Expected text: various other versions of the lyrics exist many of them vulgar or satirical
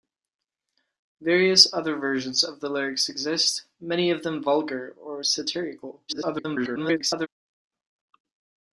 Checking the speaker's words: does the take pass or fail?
fail